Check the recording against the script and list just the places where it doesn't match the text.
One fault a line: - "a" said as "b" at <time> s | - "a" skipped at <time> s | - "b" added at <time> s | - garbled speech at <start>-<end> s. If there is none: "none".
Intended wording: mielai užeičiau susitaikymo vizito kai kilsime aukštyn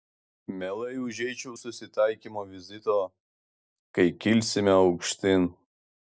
none